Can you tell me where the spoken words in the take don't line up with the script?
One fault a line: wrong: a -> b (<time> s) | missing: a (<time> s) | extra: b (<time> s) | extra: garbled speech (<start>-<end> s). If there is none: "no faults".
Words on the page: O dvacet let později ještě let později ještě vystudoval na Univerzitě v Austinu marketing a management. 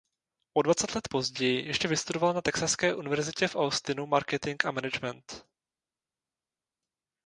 missing: let později ještě (1.9 s)
extra: Texaské (2.4 s)